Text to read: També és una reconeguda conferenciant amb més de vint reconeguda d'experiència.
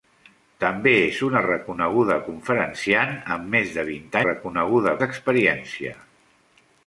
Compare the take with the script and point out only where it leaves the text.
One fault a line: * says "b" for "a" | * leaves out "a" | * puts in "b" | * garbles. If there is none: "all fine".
all fine